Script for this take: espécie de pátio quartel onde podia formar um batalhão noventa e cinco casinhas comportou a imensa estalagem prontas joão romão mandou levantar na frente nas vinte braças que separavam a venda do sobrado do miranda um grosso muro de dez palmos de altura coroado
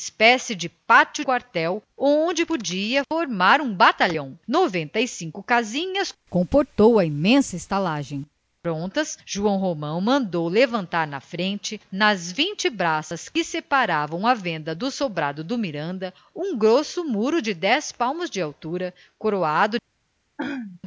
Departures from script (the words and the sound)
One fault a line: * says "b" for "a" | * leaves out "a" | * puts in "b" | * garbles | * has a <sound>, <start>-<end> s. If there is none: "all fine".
* has a throat clearing, 20.4-20.8 s